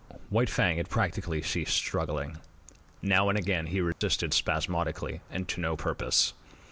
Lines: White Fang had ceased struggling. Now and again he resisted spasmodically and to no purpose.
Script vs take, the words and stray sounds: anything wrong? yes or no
yes